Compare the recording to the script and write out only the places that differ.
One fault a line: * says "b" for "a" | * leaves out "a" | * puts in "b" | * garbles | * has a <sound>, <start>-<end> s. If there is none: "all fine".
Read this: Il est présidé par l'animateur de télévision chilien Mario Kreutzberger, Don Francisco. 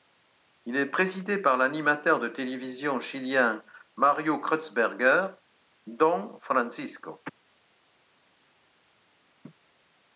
all fine